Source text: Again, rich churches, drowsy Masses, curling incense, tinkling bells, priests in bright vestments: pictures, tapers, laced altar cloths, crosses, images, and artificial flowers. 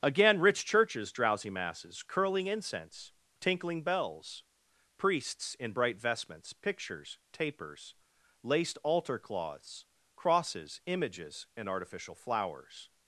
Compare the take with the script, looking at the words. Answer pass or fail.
pass